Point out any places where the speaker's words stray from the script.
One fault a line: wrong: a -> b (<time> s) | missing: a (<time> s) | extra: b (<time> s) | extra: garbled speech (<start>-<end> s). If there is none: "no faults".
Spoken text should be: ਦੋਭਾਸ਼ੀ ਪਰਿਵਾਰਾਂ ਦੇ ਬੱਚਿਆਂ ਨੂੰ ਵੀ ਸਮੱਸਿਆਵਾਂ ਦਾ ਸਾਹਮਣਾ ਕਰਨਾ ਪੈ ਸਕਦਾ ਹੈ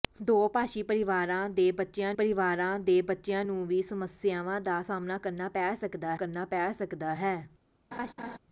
extra: ਪਰਿਵਾਰਾਂ ਦੇ ਬੱਚਿਆਂ (2.1 s)
extra: ਕਰਨਾ ਪੈ ਸਕਦਾ (6.1 s)